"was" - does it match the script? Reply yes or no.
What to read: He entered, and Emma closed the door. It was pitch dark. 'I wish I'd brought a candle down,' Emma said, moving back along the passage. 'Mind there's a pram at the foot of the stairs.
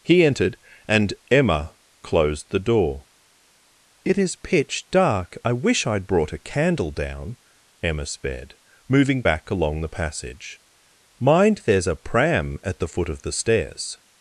no